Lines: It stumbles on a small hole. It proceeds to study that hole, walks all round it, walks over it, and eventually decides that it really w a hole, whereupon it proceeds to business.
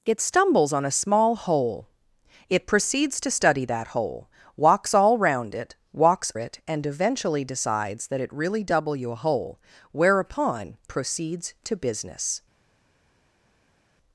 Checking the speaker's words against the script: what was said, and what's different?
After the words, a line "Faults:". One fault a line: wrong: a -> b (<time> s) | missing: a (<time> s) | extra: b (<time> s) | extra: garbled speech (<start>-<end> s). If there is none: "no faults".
It stumbles on a small hole. It proceeds to study that hole, walks all round it, walks it, and eventually decides that it really w a hole, whereupon proceeds to business.
Faults:
missing: over (6.3 s)
missing: it (10.8 s)